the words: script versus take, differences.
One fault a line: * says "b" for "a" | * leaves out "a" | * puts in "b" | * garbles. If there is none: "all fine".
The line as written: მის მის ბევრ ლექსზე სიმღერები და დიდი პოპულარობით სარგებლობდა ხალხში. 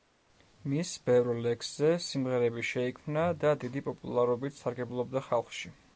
* leaves out "მის"
* puts in "შეიქმნა"